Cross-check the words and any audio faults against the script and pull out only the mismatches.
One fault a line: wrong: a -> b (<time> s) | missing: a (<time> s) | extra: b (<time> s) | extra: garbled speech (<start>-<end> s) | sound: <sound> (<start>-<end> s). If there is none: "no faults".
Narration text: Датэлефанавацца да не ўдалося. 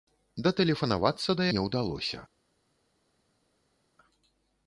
no faults